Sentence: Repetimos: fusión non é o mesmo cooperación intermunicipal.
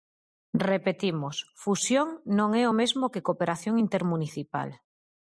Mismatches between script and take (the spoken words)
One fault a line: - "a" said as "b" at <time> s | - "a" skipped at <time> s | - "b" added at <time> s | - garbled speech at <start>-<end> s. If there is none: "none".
- "que" added at 3.1 s